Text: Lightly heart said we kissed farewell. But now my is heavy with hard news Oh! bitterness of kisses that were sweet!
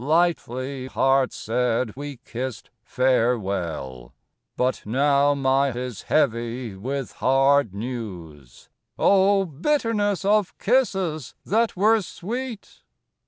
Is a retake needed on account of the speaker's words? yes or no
no